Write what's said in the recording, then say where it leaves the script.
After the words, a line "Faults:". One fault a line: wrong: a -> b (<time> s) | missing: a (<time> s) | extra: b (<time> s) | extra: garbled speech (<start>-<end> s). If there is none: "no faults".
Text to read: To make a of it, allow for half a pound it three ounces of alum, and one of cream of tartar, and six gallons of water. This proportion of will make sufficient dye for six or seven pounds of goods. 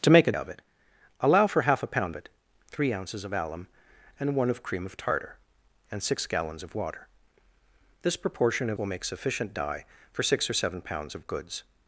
To make a of it, allow for half a pound it three ounces of alum, and one of cream of tartar, and six gallons of water. This proportion of will make sufficient dye for six or seven pounds of goods.
Faults:
no faults